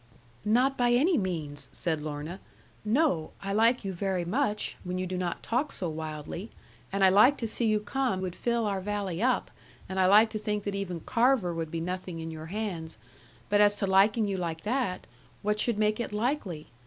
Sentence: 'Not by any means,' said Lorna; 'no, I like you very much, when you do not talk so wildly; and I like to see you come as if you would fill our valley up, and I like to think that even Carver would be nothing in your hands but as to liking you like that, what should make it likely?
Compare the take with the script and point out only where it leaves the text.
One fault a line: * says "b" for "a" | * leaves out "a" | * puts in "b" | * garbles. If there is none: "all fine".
* leaves out "as if you"